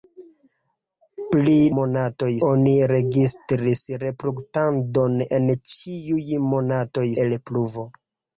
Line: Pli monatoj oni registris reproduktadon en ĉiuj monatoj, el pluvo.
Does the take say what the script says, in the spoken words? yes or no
yes